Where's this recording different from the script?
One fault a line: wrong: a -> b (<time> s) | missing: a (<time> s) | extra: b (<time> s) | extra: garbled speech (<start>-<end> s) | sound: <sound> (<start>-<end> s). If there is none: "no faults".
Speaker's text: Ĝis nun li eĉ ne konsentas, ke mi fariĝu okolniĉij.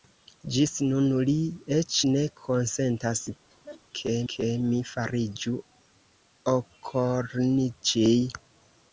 sound: laugh (3.5-3.8 s)
extra: ke (4.3 s)